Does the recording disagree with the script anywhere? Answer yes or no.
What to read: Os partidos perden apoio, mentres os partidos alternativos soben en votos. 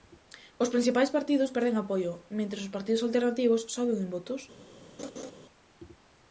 yes